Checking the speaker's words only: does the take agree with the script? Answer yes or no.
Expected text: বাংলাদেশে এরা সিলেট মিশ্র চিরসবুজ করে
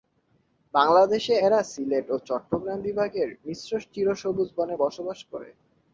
no